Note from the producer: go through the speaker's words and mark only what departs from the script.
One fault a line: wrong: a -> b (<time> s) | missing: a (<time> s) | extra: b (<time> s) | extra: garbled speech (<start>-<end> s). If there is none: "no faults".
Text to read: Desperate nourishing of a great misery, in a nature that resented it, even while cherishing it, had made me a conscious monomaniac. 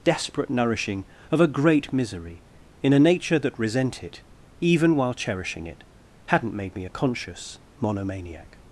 wrong: resented -> resent (3.6 s)
wrong: had -> hadn't (6.3 s)